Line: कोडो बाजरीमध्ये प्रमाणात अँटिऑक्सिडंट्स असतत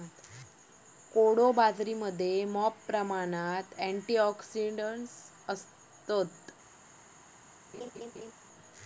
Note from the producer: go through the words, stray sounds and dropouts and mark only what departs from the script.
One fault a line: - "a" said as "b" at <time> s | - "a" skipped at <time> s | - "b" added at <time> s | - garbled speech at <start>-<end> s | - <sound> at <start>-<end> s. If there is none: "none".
- "मॉप" added at 2.5 s
- laugh at 7.7-8.3 s